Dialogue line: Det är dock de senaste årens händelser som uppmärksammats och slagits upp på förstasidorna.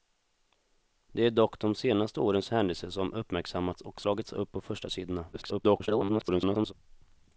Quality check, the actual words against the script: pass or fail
fail